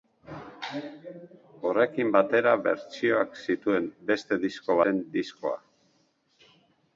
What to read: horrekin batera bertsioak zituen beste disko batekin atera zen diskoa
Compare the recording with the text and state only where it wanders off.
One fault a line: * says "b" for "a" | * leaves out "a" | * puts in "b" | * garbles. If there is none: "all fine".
* leaves out "batekin atera"